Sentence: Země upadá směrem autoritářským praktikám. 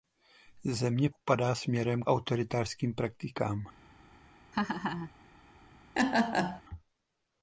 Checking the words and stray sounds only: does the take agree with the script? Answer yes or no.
no